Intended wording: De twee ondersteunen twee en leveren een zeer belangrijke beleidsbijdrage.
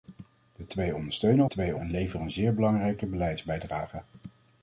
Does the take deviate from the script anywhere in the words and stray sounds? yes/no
no